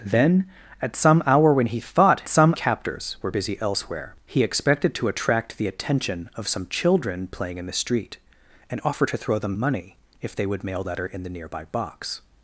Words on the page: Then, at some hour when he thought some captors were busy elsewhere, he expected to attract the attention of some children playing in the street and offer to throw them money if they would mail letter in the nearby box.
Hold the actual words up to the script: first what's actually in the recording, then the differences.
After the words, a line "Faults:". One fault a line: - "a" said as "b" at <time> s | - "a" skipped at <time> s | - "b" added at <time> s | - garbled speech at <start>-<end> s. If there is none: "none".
Then, at some hour when he thought some captors were busy elsewhere, he expected to attract the attention of some children playing in the street and offer to throw them money if they would mail letter in the nearby box.
Faults:
none